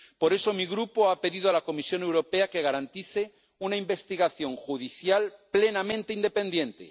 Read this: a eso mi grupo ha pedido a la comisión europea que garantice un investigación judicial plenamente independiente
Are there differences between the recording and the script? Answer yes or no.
yes